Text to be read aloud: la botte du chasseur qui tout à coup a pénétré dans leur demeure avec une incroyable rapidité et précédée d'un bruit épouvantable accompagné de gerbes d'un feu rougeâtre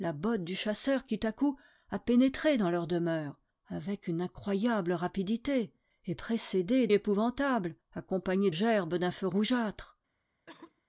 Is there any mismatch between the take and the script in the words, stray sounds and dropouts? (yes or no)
yes